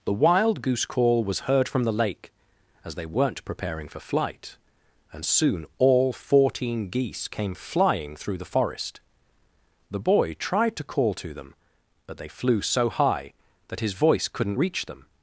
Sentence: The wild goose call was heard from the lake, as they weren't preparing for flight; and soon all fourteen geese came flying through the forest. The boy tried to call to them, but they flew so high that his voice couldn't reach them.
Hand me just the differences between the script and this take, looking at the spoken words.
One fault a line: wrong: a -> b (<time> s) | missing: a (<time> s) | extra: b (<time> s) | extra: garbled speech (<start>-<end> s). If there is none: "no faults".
no faults